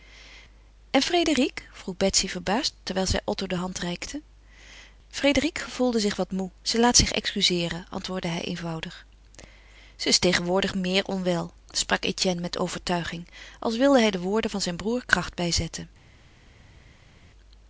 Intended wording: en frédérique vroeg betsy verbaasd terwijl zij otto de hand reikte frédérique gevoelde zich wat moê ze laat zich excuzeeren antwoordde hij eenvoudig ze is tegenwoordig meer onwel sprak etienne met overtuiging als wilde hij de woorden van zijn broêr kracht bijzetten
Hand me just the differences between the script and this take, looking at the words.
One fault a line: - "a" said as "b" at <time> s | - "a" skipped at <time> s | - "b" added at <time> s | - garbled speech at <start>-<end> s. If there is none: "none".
none